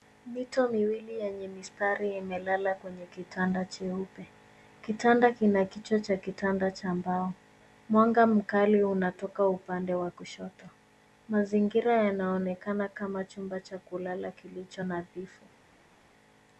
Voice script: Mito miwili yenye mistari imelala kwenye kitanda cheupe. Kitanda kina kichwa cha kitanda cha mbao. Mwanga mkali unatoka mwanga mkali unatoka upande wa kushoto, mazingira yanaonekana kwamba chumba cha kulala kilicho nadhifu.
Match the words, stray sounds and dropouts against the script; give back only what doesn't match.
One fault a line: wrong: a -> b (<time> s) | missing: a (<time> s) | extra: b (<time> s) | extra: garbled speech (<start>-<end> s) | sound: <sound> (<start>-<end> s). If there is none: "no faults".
missing: mwanga mkali unatoka (9.5 s)
wrong: kwamba -> kama (12.9 s)